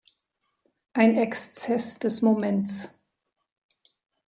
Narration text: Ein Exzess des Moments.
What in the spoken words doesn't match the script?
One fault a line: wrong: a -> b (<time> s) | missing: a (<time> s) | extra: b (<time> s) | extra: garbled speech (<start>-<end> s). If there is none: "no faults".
no faults